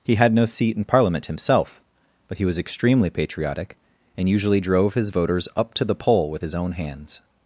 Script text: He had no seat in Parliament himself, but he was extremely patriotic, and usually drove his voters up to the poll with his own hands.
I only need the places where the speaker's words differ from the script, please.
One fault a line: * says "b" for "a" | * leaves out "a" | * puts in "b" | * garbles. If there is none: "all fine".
all fine